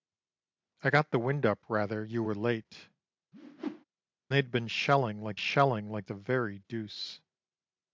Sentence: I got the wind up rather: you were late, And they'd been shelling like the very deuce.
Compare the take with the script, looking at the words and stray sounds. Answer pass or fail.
fail